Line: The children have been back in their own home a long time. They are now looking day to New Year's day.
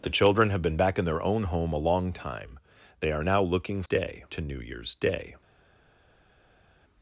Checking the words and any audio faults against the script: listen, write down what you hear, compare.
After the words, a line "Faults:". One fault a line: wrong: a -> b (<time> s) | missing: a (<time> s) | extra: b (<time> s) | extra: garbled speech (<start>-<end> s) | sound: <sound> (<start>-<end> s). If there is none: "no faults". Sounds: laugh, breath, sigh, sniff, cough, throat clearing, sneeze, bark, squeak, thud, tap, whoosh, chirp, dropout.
The children have been back in their own home a long time. They are now looking day to New Year's day.
Faults:
no faults